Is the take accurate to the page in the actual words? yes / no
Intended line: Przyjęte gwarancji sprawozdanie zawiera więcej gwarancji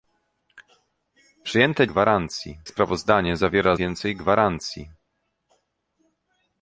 yes